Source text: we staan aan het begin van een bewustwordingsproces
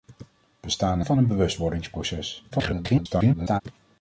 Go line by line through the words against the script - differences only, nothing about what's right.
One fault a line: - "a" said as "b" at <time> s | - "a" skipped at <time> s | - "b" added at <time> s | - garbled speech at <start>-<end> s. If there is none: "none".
- "aan het begin" skipped at 1.0 s
- garbled speech at 2.5-3.6 s